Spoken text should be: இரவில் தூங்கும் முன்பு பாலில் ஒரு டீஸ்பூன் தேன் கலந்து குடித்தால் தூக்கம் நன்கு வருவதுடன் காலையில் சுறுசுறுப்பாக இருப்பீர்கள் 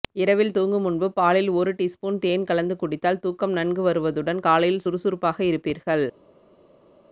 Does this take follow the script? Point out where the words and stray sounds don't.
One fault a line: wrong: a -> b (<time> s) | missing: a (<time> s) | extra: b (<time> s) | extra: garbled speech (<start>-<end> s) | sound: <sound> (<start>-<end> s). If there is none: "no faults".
no faults